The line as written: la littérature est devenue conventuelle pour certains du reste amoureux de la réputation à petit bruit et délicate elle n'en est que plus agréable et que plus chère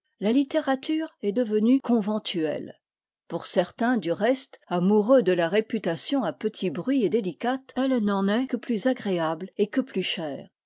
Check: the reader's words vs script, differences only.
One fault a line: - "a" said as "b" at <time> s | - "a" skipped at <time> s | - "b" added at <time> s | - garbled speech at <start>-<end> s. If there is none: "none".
none